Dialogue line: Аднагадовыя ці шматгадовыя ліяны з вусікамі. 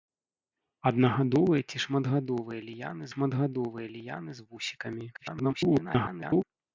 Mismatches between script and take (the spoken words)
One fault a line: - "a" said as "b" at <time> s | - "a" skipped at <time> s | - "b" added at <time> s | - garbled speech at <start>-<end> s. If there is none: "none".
- "шматгадовыя ліяны" added at 3.1 s
- garbled speech at 5.1-6.4 s